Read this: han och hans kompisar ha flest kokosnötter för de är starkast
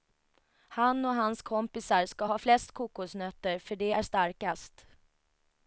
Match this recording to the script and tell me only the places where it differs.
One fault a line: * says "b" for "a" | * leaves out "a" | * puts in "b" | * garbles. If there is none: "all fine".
* puts in "ska"